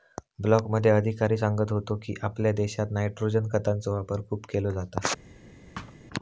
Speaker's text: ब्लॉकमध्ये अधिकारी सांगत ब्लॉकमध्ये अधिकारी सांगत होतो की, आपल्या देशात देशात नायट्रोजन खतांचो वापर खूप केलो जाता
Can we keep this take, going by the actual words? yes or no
no